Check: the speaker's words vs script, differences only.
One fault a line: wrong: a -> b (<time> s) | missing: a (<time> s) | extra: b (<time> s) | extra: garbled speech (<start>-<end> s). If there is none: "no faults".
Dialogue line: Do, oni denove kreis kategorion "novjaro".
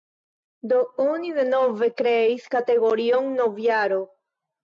no faults